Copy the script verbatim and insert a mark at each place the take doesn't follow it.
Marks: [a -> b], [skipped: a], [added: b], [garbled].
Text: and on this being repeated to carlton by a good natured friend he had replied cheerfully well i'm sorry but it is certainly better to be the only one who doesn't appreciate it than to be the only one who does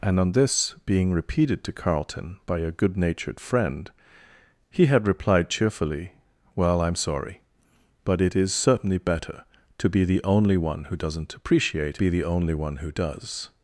and on this being repeated to carlton by a good natured friend he had replied cheerfully well i'm sorry but it is certainly better to be the only one who doesn't appreciate [skipped: it than to] be the only one who does